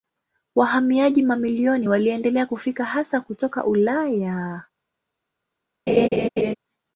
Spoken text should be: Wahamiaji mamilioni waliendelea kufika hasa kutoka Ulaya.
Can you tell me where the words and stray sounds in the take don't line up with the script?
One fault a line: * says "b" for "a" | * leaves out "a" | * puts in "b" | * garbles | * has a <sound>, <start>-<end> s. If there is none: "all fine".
* has a laugh, 5.9-6.5 s